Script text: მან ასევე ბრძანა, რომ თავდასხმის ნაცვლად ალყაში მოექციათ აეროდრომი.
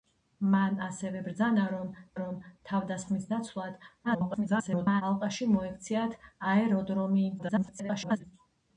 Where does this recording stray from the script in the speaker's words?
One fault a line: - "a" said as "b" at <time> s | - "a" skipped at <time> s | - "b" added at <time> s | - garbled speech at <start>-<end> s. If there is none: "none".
- "რომ" added at 2.2 s
- garbled speech at 4.0-5.0 s
- garbled speech at 7.4-8.2 s